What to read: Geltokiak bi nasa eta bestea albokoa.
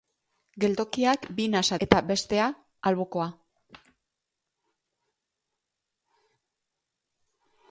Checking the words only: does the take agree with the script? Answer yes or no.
yes